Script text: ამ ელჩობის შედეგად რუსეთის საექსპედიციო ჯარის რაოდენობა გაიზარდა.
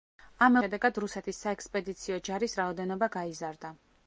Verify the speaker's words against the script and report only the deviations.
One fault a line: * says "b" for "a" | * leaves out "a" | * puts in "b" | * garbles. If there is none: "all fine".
* leaves out "ელჩობის"